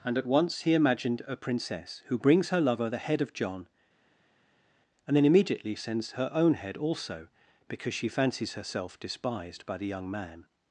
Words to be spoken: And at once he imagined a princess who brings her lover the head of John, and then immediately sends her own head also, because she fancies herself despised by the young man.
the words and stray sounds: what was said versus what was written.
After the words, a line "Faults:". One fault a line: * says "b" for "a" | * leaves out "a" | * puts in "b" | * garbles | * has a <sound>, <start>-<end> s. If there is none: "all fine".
And at once he imagined a princess who brings her lover the head of John, and then immediately sends her own head also, because she fancies herself despised by the young man.
Faults:
all fine